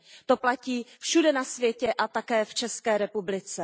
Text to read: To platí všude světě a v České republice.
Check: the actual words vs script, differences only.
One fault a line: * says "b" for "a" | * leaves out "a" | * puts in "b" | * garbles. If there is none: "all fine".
* puts in "na"
* puts in "také"